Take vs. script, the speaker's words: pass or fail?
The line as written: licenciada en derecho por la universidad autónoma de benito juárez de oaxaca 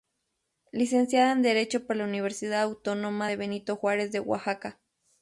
pass